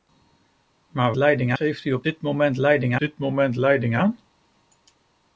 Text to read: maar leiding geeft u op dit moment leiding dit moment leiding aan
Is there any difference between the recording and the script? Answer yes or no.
no